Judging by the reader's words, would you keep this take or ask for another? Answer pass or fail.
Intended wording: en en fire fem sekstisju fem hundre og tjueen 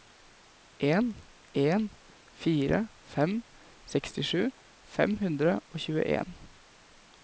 pass